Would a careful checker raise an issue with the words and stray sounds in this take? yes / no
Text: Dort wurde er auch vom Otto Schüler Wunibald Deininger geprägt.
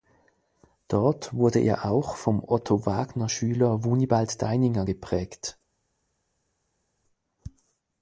yes